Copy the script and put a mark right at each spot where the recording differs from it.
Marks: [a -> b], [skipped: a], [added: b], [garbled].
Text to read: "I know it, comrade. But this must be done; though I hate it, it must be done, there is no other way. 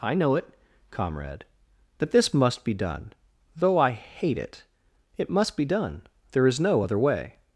"I know it, comrade. [But -> That] this must be done; though I hate it, it must be done, there is no other way.